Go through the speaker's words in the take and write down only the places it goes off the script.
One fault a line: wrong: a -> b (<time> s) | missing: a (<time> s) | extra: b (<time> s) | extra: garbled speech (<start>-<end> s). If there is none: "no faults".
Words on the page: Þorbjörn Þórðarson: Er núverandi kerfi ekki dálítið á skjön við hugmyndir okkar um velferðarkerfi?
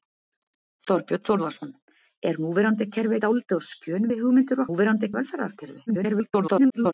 missing: ekki (3.2 s)
wrong: okkar -> núverandi (4.7 s)
extra: garbled speech (5.9-6.9 s)